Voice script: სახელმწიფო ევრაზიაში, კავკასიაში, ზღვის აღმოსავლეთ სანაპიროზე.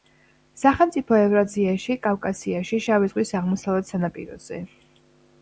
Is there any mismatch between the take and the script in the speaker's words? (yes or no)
yes